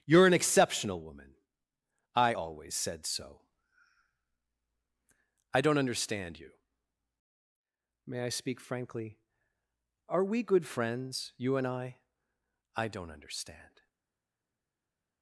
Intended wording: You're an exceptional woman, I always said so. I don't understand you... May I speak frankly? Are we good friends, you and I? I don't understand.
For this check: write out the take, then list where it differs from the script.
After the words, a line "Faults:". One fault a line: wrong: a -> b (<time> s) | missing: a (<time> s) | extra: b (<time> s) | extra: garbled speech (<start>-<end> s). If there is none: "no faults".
You're an exceptional woman, I always said so. I don't understand you... May I speak frankly? Are we good friends, you and I? I don't understand.
Faults:
no faults